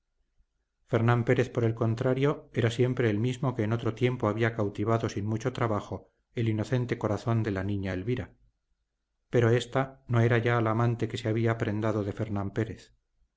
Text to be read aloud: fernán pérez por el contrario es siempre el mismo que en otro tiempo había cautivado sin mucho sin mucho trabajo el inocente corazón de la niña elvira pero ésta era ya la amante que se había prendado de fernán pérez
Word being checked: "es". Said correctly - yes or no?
no